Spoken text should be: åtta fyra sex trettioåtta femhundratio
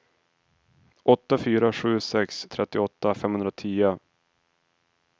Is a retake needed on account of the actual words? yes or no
yes